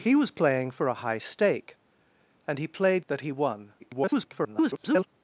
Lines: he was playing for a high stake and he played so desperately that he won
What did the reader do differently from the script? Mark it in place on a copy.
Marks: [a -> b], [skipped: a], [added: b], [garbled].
he was playing for a high stake and he played [skipped: so desperately] that he won [garbled]